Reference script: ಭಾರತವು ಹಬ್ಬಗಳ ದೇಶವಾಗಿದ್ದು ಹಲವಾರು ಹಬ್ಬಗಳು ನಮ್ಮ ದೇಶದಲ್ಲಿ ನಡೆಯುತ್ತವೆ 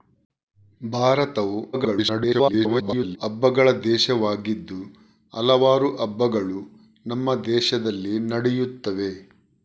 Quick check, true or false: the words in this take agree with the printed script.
false